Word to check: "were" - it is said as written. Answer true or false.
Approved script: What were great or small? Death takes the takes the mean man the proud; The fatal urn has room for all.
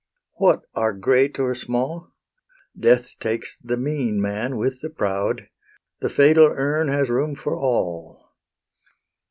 false